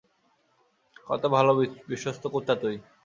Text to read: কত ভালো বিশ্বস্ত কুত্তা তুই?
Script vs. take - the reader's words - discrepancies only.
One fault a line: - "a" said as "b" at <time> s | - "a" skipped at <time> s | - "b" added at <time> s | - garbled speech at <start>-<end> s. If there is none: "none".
none